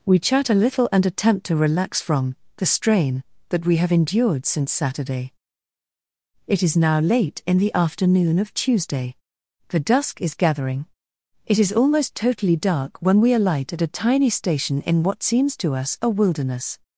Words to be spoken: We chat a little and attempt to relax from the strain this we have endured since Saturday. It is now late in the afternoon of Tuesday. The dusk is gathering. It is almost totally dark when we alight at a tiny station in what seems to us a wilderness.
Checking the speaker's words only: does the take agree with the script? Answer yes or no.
no